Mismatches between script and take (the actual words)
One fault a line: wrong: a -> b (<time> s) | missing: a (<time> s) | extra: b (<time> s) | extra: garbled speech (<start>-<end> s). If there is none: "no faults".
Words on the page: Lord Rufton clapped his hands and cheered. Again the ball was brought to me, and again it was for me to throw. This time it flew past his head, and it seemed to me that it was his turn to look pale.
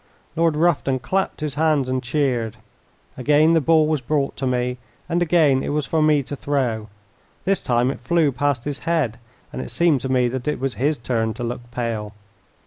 no faults